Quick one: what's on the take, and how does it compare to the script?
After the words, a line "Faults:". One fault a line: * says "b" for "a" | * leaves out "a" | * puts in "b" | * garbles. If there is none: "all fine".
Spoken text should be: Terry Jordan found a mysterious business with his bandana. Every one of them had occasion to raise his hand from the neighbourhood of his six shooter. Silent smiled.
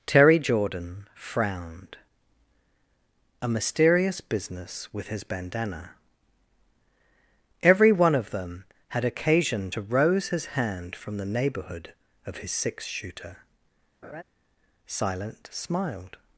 Terry Jordan frowned a mysterious business with his bandana. Every one of them had occasion to rose his hand from the neighbourhood of his six shooter. Silent smiled.
Faults:
* says "frowned" for "found"
* says "rose" for "raise"